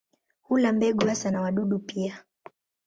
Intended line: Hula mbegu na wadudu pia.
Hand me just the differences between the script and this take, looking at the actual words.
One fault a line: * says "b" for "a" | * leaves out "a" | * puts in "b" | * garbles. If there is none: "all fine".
* puts in "hasa"